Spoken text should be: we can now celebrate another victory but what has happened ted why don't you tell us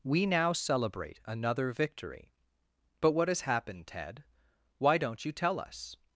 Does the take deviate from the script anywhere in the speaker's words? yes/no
yes